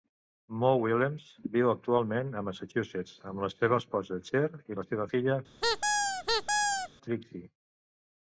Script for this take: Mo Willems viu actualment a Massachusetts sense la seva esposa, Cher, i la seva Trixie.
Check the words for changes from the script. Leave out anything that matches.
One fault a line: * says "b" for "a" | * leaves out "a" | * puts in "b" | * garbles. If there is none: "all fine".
* says "amb" for "sense"
* puts in "filla"